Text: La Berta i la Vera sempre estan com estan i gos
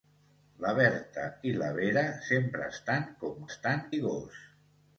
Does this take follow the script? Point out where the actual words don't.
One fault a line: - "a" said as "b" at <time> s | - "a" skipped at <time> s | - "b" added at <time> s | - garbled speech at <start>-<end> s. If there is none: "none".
none